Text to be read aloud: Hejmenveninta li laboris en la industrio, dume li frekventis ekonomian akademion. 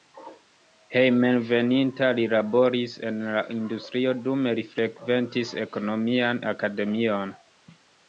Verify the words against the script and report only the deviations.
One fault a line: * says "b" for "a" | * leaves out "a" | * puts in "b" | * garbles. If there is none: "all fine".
all fine